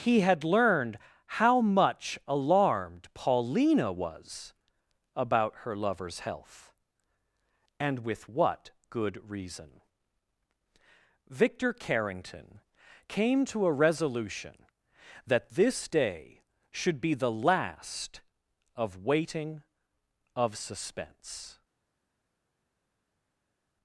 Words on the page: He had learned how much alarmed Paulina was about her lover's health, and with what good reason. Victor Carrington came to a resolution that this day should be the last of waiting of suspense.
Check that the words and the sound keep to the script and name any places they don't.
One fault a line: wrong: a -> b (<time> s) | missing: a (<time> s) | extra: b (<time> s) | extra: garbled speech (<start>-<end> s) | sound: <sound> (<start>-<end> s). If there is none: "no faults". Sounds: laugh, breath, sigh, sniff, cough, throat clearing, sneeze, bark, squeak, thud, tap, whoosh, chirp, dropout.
no faults